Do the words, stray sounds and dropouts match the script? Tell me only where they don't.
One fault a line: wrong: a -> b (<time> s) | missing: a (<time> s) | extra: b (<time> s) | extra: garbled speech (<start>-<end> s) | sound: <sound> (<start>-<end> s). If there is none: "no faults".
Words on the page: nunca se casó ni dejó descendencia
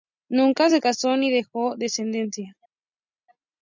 no faults